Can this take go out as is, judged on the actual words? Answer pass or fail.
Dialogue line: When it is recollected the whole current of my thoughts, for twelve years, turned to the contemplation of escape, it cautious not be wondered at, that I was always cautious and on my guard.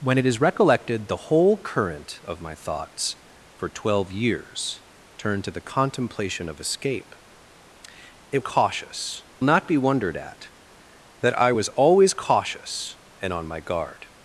pass